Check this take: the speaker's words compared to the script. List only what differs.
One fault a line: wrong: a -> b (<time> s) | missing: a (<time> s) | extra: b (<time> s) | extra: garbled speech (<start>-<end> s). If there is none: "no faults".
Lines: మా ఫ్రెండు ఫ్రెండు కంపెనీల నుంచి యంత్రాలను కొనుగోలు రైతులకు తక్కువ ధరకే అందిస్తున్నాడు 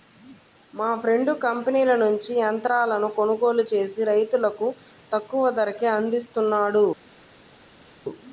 missing: ఫ్రెండు (1.3 s)
extra: చేసి (3.7 s)